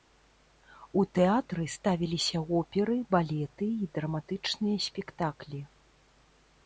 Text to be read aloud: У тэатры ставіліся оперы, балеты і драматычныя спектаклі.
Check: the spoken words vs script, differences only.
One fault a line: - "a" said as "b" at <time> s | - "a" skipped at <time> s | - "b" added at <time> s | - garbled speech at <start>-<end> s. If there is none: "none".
none